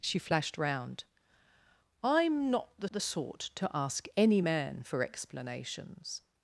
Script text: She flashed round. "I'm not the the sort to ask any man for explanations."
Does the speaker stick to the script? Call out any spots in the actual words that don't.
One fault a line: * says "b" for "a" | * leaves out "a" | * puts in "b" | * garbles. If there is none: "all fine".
all fine